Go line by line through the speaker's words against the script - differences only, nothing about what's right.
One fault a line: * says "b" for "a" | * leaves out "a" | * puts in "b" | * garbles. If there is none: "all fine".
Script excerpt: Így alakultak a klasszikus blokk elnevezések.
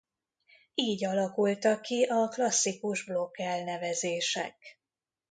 * puts in "ki"